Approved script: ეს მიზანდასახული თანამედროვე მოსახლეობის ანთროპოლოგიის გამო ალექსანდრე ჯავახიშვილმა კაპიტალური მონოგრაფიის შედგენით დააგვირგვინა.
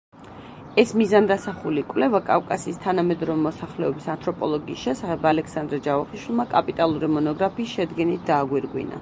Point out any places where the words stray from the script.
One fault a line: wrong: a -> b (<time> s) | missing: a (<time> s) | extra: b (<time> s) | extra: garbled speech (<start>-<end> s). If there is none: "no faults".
extra: კვლევა კავკასიის (1.9 s)
wrong: გამო -> შესახებ (4.9 s)